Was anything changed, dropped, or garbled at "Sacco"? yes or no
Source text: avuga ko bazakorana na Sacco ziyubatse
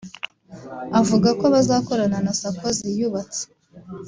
no